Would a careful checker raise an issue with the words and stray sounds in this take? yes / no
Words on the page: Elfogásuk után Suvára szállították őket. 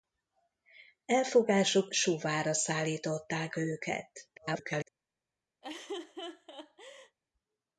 yes